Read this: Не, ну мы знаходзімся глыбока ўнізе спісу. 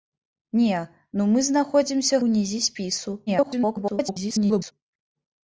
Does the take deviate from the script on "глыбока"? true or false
true